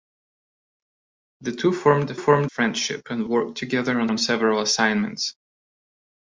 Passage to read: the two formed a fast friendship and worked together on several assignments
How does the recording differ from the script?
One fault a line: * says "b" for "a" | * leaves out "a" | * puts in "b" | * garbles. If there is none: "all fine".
* says "formed" for "fast"
* puts in "on"